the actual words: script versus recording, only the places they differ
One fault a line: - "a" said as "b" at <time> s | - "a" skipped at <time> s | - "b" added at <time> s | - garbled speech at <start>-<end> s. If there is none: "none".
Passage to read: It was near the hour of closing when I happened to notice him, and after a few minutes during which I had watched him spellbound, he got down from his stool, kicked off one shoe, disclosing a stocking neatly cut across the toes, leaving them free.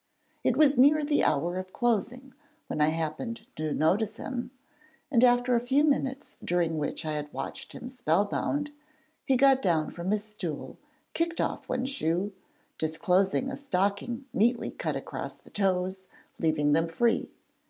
none